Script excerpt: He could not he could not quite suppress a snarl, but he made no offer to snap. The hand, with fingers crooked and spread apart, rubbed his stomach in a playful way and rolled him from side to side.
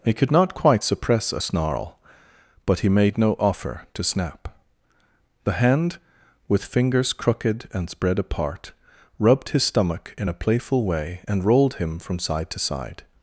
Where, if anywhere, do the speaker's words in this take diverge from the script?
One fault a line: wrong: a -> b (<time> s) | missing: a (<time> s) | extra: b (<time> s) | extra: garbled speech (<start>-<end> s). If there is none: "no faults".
missing: he could not (0.5 s)